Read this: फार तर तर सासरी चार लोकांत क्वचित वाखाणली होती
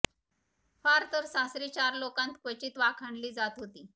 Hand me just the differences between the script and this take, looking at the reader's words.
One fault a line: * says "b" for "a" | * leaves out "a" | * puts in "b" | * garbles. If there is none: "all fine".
* leaves out "तर"
* puts in "जात"